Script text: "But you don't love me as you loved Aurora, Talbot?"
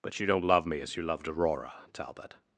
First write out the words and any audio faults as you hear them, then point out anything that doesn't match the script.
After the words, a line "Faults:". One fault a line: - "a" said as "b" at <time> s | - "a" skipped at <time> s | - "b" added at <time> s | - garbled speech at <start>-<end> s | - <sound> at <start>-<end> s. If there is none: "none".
"But you don't love me as you loved Aurora, Talbot?"
Faults:
none